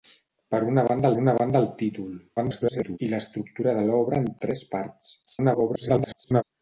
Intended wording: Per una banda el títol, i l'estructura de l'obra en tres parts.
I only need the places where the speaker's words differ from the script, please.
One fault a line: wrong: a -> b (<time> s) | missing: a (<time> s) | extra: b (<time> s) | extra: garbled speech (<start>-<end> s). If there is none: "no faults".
extra: una banda (1.2 s)
extra: garbled speech (2.4-3.0 s)
extra: garbled speech (5.3-6.4 s)